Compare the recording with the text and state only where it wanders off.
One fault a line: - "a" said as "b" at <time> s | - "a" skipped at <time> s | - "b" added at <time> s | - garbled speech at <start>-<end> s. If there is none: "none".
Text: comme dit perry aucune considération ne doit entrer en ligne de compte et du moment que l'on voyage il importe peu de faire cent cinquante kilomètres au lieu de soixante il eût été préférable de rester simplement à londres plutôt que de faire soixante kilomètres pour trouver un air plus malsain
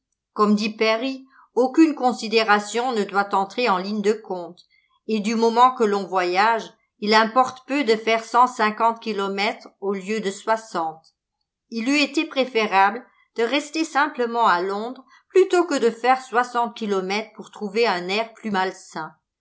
none